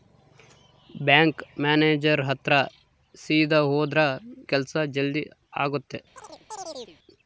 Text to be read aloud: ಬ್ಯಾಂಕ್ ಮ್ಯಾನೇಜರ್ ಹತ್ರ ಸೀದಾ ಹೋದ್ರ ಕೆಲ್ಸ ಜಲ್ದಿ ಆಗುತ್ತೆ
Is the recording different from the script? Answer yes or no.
no